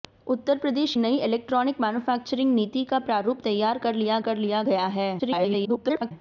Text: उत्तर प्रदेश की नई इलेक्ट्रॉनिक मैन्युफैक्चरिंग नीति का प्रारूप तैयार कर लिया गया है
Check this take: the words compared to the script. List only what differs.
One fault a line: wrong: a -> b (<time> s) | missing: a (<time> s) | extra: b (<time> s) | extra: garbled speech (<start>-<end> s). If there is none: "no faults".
missing: की (0.9 s)
extra: कर लिया (4.2 s)
extra: garbled speech (5.2-6.1 s)